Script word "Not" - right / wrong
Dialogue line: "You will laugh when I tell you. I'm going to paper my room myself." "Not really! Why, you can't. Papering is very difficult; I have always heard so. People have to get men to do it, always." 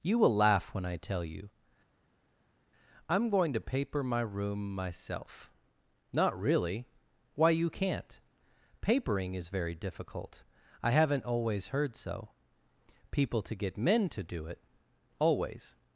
right